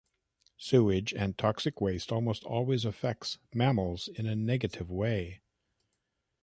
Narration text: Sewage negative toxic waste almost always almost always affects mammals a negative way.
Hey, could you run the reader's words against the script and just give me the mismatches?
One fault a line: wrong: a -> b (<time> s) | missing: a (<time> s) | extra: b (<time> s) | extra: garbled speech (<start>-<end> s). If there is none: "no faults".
wrong: negative -> and (1.1 s)
missing: almost always (2.9 s)
extra: in (4.1 s)